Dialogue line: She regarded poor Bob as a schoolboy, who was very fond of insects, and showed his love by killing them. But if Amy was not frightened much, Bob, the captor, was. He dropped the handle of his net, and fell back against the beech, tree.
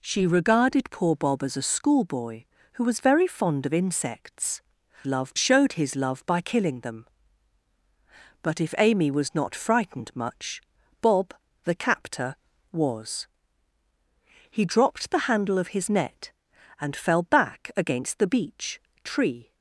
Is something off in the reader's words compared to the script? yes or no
yes